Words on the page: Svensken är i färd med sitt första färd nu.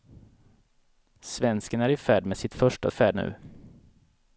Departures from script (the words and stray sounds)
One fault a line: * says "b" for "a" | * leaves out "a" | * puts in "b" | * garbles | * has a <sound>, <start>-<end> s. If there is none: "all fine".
all fine